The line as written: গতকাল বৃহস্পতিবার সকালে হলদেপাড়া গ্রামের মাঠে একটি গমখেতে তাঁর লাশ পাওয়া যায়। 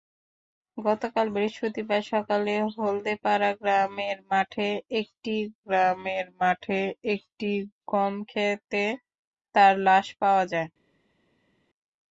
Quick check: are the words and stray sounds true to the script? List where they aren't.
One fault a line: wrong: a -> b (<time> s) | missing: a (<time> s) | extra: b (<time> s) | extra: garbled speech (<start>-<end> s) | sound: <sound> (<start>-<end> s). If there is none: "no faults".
extra: গ্রামের মাঠে একটি (5.6 s)